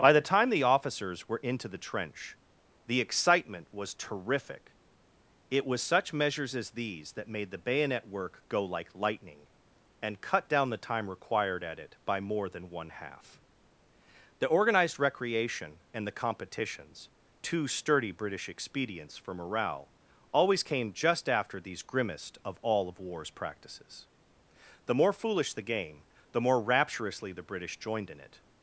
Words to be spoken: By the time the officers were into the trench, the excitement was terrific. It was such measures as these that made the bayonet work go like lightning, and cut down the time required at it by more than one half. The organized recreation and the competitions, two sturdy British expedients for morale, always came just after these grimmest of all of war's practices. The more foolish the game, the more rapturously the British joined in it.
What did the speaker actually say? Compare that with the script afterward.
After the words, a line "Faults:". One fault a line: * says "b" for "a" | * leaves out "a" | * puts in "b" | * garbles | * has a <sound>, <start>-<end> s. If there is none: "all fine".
By the time the officers were into the trench, the excitement was terrific. It was such measures as these that made the bayonet work go like lightning, and cut down the time required at it by more than one half. The organized recreation and the competitions, two sturdy British expedients for morale, always came just after these grimmest of all of war's practices. The more foolish the game, the more rapturously the British joined in it.
Faults:
all fine